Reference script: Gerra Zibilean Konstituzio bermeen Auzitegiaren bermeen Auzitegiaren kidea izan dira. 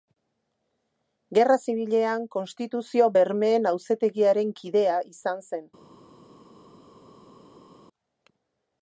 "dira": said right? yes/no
no